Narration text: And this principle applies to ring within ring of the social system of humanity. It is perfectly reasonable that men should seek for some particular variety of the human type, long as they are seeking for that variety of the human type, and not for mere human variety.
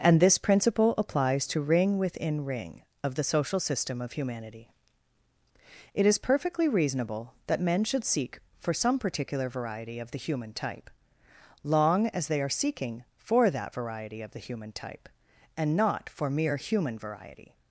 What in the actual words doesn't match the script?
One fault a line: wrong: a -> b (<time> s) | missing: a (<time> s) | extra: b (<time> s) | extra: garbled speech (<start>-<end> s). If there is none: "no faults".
no faults